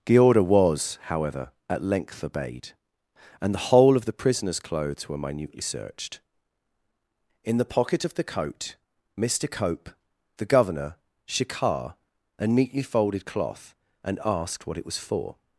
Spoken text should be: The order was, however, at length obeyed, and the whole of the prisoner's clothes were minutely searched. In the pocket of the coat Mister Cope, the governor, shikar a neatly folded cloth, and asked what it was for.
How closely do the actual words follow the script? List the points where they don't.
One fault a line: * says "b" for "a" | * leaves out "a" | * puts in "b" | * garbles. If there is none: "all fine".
all fine